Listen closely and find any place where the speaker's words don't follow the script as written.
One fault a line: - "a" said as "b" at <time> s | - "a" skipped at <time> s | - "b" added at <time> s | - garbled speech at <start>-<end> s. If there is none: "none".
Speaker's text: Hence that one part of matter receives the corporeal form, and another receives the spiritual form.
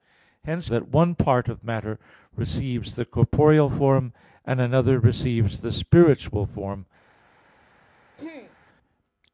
none